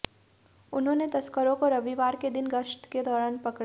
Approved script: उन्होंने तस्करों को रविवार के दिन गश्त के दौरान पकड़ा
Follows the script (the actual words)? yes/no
yes